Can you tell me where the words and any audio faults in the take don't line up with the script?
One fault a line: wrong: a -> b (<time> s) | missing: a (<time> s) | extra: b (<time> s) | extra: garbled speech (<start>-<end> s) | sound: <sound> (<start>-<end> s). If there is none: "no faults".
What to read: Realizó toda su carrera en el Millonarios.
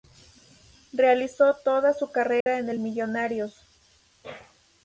sound: dropout (2.4-2.5 s)